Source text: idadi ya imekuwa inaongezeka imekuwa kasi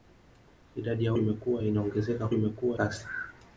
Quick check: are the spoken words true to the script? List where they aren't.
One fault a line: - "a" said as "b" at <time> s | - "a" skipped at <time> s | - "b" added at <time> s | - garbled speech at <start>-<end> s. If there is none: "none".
none